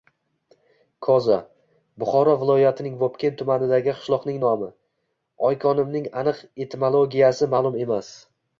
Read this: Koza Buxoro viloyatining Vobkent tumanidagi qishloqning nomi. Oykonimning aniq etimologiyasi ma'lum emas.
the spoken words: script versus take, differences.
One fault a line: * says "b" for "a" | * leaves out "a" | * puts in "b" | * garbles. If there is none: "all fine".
all fine